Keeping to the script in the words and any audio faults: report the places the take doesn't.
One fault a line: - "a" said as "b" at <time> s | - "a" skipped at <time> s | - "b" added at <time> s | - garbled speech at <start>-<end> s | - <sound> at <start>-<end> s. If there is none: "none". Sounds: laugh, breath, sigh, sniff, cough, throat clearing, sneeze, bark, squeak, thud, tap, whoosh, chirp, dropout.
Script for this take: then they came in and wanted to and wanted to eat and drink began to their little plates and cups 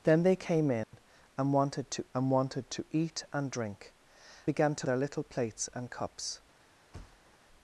- dropout at 0.8-0.9 s
- thud at 6.9-7.4 s